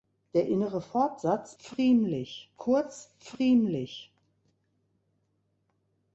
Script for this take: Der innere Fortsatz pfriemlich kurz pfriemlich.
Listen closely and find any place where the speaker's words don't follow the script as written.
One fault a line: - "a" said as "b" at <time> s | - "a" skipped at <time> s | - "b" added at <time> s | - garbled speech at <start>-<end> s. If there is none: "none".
none